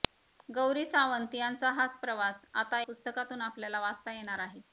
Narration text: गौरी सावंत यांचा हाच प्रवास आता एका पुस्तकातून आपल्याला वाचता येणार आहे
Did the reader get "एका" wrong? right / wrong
wrong